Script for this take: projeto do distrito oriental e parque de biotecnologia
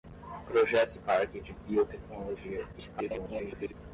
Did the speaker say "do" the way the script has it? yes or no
no